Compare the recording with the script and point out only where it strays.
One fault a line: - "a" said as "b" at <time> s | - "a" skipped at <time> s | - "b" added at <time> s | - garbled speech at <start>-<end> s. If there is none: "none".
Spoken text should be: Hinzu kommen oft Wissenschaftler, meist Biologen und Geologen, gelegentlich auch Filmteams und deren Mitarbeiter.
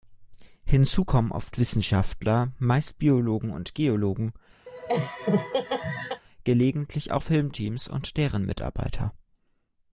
none